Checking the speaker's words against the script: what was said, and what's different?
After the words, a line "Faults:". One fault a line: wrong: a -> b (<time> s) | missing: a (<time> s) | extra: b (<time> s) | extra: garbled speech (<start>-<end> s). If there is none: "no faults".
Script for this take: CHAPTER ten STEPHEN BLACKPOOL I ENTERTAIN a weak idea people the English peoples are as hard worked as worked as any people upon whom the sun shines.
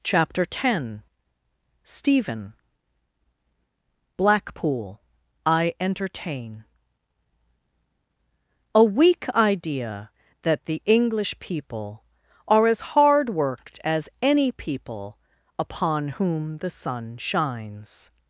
CHAPTER ten STEPHEN BLACKPOOL I ENTERTAIN a weak idea that the English people are as hard worked as any people upon whom the sun shines.
Faults:
wrong: people -> that (10.4 s)
wrong: peoples -> people (11.4 s)
missing: worked as (14.1 s)